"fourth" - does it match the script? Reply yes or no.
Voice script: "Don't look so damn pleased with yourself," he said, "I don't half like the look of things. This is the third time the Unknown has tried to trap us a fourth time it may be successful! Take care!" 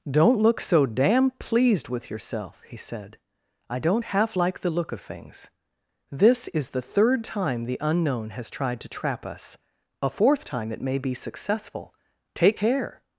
yes